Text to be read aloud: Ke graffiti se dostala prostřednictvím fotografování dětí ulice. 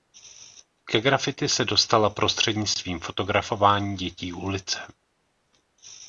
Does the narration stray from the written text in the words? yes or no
no